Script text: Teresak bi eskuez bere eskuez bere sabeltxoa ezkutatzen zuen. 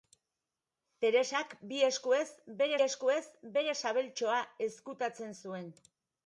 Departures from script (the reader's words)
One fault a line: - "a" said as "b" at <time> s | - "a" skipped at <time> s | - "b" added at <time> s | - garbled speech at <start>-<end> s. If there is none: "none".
none